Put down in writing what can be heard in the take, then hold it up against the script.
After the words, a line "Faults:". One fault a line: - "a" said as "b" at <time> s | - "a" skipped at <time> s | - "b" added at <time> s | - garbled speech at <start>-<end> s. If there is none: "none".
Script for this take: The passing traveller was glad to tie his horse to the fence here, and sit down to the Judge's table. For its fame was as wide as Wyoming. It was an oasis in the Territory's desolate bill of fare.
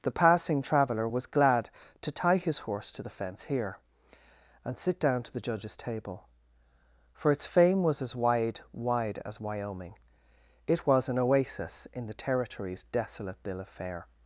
The passing traveller was glad to tie his horse to the fence here, and sit down to the Judge's table. For its fame was as wide wide as Wyoming. It was an oasis in the Territory's desolate bill of fare.
Faults:
- "wide" added at 8.7 s